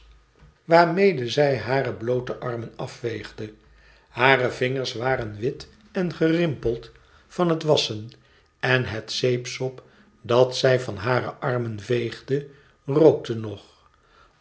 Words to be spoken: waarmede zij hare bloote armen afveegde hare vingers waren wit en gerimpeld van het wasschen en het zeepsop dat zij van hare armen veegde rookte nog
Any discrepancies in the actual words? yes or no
no